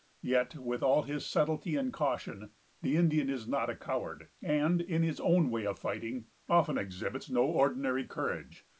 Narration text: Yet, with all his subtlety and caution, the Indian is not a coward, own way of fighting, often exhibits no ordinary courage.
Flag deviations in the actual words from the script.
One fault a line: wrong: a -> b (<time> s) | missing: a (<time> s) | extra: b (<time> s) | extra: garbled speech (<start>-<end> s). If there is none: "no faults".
extra: and in his (4.4 s)